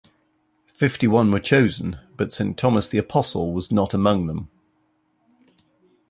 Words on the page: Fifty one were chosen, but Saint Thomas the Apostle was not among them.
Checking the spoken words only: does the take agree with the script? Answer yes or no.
yes